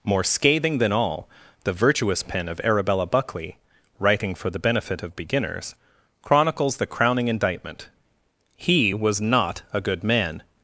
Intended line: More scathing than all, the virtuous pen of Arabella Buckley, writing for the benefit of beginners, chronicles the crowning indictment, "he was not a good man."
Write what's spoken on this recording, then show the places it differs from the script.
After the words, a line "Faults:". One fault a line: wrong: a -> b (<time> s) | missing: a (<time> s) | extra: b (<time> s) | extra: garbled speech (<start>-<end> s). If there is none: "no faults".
More scathing than all, the virtuous pen of Arabella Buckley, writing for the benefit of beginners, chronicles the crowning indictment, "he was not a good man."
Faults:
no faults